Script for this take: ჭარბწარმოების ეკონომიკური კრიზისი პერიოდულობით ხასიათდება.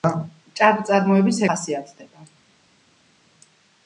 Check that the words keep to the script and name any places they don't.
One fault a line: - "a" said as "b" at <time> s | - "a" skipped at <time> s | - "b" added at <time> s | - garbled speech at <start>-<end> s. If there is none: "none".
- "ეკონომიკური კრიზისი პერიოდულობით" skipped at 1.4 s